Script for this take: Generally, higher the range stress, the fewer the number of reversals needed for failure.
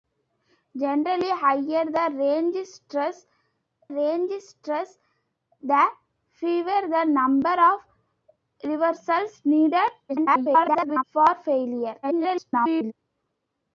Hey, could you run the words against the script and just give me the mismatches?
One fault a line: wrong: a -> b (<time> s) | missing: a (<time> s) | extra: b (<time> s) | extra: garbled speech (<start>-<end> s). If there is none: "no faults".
extra: range stress (3.9 s)
extra: garbled speech (10.1-11.0 s)
extra: garbled speech (12.0-12.9 s)